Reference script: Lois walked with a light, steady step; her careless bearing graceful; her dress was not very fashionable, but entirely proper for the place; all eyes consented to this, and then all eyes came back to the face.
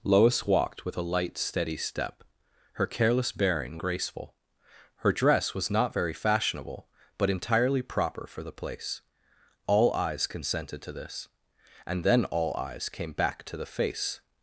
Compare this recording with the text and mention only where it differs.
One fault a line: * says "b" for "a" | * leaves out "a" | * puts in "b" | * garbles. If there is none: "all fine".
all fine